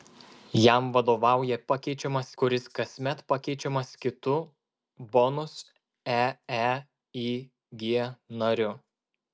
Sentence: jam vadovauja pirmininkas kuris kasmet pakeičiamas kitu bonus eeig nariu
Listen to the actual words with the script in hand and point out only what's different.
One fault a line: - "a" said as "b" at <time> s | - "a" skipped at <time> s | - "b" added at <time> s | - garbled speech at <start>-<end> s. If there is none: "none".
- "pirmininkas" said as "pakeičiamas" at 1.7 s